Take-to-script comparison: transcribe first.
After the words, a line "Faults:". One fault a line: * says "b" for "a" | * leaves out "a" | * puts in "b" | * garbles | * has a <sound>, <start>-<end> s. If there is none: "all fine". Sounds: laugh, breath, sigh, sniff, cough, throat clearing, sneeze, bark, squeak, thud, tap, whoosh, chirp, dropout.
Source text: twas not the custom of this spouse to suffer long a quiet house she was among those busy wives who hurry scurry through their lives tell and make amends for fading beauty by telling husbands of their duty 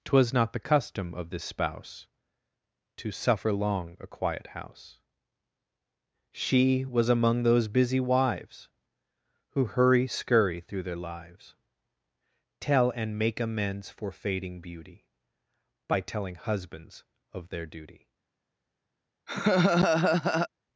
twas not the custom of this spouse to suffer long a quiet house she was among those busy wives who hurry scurry through their lives tell and make amends for fading beauty by telling husbands of their duty
Faults:
* has a laugh, 19.3-20.5 s